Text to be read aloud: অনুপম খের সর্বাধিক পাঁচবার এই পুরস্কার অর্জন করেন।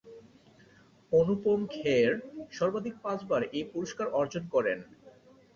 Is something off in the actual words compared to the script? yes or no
no